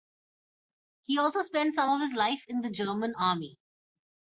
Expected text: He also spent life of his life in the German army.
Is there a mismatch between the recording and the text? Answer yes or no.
yes